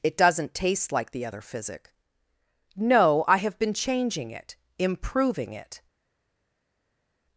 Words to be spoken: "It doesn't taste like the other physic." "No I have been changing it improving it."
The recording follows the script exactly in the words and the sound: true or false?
true